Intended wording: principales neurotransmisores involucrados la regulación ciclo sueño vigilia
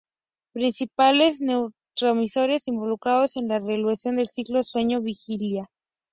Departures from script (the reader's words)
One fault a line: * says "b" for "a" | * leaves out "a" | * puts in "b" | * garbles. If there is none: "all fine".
* puts in "en"
* puts in "del"